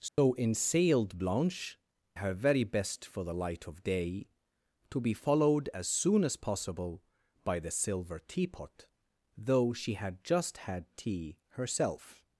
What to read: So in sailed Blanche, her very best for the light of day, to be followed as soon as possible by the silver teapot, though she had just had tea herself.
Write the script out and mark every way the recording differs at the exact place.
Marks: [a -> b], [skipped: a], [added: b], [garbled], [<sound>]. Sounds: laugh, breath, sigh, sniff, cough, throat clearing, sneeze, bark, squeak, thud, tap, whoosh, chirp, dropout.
So [dropout] in sailed Blanche, her very best for the light of day, to be followed as soon as possible by the silver teapot, though she had just had tea herself.